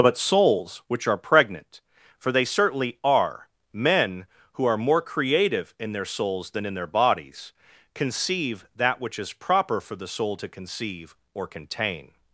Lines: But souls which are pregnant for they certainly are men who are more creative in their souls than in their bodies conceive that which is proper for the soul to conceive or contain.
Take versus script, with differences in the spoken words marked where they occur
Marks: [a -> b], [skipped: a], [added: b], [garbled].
But souls which are pregnant for they certainly are men who are more creative in their souls than in their bodies conceive that which is proper for the soul to conceive or contain.